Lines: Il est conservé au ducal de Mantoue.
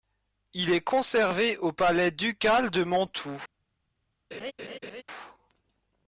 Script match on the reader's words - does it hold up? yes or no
no